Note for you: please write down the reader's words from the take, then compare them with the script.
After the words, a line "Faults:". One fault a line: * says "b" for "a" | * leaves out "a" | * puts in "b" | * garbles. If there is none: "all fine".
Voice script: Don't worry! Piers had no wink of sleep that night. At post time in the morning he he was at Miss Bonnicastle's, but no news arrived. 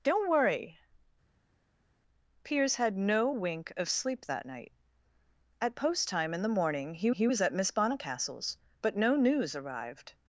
Don't worry! Piers had no wink of sleep that night. At post time in the morning he he was at Miss Bonnicastle's, but no news arrived.
Faults:
all fine